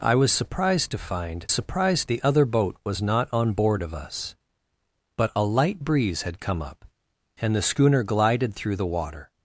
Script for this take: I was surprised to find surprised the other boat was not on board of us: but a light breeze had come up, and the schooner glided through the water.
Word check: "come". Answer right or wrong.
right